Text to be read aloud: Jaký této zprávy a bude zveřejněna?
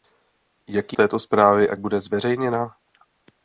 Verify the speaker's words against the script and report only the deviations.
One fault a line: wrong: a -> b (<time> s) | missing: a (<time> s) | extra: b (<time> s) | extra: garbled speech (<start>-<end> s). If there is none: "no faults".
no faults